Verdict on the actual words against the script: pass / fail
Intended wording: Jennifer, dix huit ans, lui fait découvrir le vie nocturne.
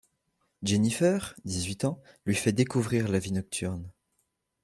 fail